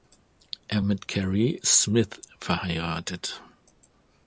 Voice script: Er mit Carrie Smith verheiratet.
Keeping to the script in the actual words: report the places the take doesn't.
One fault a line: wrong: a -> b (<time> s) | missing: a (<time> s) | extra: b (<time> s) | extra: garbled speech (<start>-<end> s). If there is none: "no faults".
no faults